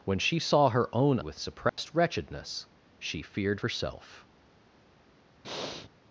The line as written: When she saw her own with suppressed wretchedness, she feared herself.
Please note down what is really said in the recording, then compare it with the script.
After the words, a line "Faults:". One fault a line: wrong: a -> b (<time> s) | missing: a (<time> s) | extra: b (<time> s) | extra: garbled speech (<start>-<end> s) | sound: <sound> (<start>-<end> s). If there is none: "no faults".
When she saw her own with suppressed wretchedness, she feared herself.
Faults:
sound: dropout (1.7-1.8 s)
sound: breath (5.4-5.9 s)